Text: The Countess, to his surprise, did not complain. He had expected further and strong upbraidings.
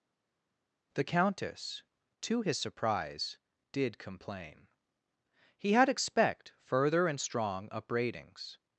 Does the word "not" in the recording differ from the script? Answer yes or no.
yes